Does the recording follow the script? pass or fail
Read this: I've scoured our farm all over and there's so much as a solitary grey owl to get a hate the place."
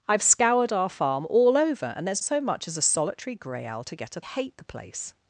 pass